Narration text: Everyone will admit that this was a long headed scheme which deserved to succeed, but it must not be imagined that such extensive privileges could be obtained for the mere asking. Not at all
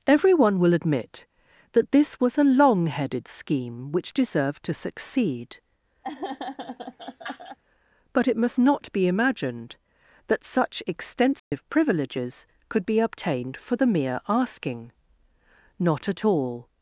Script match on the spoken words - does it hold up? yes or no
yes